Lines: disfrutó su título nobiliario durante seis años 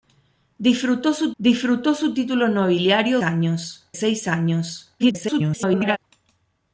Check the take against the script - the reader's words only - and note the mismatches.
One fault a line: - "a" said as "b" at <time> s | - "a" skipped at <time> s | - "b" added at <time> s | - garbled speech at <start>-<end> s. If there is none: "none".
- "disfrutó su" added at 1.4 s
- "durante" said as "años" at 3.2 s
- garbled speech at 5.0-6.0 s